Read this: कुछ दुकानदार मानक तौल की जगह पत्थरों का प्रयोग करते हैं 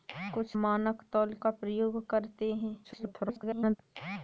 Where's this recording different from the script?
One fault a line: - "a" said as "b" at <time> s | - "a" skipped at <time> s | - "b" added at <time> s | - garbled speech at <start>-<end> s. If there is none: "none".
- "दुकानदार" skipped at 0.6 s
- "की जगह पत्थरों" skipped at 1.3 s
- garbled speech at 2.8-3.8 s